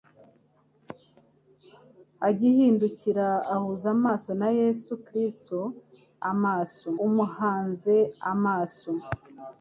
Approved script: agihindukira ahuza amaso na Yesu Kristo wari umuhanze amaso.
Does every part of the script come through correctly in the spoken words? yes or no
no